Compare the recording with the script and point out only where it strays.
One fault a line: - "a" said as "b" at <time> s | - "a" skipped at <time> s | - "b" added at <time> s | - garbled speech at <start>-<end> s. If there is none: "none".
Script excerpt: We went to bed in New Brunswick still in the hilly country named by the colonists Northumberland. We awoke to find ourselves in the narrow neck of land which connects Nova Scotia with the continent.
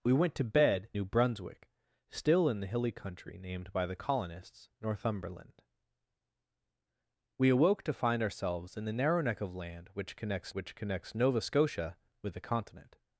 - "in" skipped at 0.9 s
- "which connects" added at 10.5 s